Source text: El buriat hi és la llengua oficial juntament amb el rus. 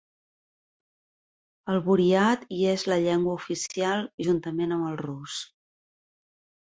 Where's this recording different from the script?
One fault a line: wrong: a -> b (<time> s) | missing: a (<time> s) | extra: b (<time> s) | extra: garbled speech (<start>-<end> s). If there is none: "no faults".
no faults